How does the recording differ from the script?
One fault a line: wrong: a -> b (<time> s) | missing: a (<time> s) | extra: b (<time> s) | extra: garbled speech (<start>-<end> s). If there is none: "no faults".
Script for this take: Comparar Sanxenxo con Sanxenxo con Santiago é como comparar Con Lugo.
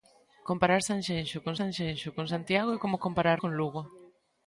no faults